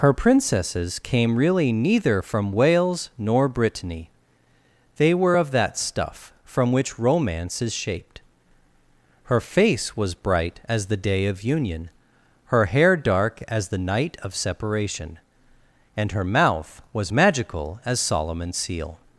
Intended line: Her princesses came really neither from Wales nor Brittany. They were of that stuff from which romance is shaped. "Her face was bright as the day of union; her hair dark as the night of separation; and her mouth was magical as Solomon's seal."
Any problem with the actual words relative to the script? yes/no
no